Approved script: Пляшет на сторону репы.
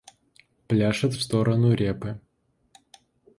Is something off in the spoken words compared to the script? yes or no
yes